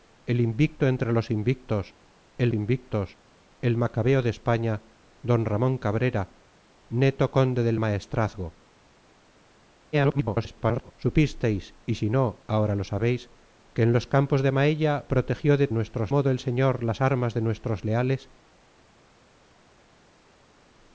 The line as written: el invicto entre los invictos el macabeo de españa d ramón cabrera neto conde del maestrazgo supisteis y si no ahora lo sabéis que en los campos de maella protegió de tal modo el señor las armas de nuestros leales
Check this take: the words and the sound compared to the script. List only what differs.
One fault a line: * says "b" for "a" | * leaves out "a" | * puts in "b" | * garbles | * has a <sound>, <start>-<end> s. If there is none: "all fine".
* puts in "invictos el"
* garbles
* says "nuestros" for "tal"